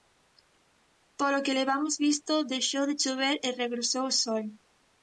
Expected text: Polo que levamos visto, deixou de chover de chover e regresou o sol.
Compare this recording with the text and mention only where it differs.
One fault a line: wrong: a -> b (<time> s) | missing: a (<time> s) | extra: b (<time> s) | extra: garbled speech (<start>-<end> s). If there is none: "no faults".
missing: de chover (3.4 s)